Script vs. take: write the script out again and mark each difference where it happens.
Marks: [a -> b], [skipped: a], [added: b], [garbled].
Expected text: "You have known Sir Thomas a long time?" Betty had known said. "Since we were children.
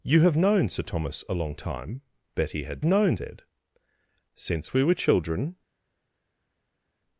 "You have known Sir Thomas a long time?" Betty had known said. "Since we were children.